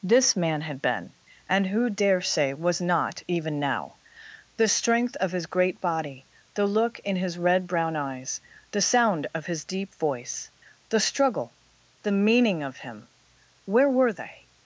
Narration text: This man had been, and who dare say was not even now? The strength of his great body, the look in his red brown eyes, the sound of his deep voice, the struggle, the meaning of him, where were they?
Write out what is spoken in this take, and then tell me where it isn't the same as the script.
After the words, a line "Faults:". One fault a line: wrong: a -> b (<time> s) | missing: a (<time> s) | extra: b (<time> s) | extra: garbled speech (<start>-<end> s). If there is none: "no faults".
This man had been, and who dare say was not even now? The strength of his great body, the look in his red brown eyes, the sound of his deep voice, the struggle, the meaning of him, where were they?
Faults:
no faults